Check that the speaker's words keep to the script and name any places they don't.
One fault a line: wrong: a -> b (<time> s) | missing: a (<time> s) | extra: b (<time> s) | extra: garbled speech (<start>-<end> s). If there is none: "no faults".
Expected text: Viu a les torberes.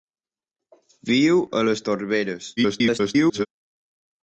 extra: garbled speech (2.6-3.5 s)